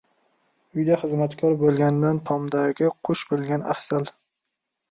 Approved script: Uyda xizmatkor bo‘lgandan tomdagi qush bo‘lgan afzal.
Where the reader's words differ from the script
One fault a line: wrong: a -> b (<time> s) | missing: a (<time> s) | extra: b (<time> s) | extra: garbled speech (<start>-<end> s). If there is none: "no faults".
no faults